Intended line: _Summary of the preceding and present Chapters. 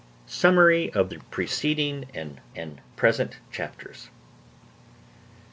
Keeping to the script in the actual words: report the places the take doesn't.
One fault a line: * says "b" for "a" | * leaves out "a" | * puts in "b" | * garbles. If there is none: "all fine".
* puts in "and"